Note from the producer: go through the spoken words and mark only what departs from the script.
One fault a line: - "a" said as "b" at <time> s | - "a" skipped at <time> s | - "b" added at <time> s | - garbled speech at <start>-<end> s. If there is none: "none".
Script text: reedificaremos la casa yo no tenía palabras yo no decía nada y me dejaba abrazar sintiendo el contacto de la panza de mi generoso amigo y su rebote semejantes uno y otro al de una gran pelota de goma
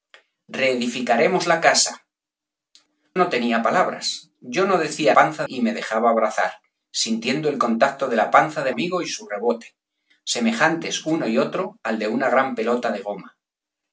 - "yo" skipped at 2.0 s
- "nada" said as "panza" at 5.1 s
- "mi generoso" skipped at 8.7 s